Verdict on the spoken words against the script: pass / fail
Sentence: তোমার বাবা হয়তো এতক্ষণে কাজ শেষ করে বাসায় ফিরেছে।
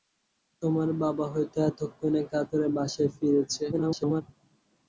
fail